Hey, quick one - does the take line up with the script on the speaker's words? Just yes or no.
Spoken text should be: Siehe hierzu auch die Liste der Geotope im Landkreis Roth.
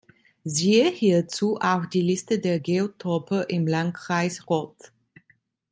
yes